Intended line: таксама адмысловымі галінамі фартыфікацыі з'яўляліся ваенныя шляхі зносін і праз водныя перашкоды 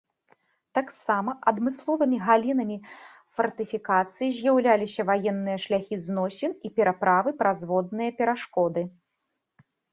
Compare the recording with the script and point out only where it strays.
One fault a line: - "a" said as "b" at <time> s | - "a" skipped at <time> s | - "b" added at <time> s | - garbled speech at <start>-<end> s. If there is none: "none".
- "пераправы" added at 6.8 s